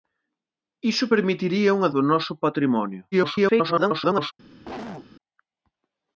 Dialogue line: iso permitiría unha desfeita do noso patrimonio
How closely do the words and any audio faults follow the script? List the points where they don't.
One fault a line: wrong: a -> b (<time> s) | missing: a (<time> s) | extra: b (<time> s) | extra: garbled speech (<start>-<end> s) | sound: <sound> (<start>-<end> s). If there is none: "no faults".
missing: desfeita (1.9 s)
extra: garbled speech (3.1-4.3 s)
sound: cough (4.6-5.1 s)